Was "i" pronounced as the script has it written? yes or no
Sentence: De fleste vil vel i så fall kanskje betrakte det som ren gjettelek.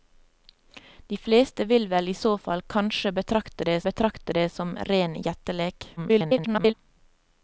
yes